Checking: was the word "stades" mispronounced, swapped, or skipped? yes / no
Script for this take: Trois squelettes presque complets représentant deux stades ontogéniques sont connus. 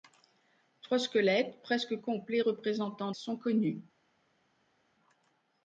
yes